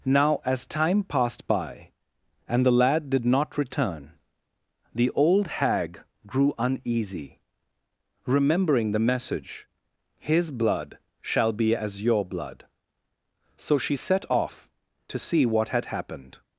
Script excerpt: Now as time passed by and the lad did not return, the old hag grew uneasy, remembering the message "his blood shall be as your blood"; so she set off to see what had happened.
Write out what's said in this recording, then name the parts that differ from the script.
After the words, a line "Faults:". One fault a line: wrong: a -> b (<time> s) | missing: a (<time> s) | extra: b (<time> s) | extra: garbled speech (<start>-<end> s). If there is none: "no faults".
Now as time passed by and the lad did not return, the old hag grew uneasy, remembering the message "his blood shall be as your blood"; so she set off to see what had happened.
Faults:
no faults